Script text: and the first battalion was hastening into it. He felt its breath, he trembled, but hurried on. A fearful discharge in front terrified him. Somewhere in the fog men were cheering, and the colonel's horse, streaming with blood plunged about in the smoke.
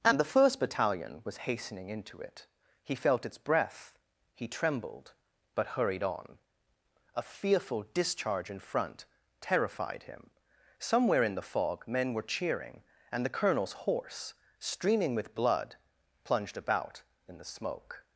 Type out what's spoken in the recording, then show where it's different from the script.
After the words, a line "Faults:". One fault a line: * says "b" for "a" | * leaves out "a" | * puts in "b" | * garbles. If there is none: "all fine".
and the first battalion was hastening into it. He felt its breath, he trembled, but hurried on. A fearful discharge in front terrified him. Somewhere in the fog men were cheering, and the colonel's horse, streaming with blood plunged about in the smoke.
Faults:
all fine